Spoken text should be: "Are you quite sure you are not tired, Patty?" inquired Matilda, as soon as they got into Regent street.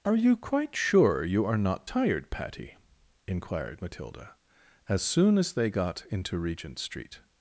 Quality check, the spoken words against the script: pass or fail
pass